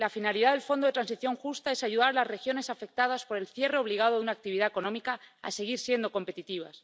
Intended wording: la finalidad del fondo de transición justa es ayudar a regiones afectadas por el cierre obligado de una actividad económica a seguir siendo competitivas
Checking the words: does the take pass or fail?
fail